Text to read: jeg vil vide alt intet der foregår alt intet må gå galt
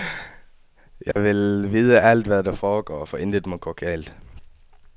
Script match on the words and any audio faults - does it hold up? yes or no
no